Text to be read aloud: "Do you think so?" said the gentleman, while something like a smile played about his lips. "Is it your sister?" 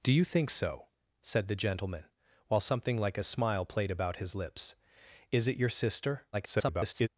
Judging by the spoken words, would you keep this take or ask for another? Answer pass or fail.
fail